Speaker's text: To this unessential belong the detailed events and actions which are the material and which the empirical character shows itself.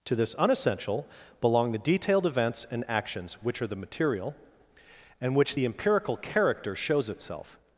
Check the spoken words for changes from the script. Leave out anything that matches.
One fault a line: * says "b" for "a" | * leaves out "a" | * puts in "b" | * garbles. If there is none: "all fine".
all fine